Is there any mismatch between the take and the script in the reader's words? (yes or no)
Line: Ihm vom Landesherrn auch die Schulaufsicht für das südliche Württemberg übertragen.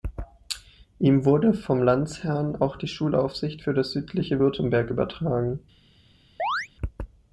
yes